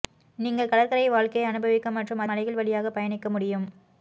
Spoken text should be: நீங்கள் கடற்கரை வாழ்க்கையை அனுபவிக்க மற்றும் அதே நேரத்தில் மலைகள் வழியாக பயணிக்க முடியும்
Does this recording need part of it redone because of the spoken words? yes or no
yes